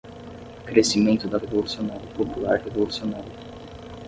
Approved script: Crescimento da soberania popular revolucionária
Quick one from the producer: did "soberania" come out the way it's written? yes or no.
no